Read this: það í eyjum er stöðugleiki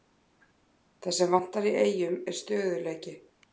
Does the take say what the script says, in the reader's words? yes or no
no